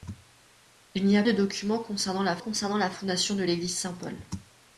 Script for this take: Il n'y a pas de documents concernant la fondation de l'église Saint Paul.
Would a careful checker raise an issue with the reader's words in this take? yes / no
yes